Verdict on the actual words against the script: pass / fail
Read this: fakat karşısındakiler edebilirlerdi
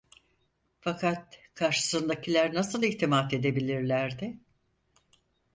fail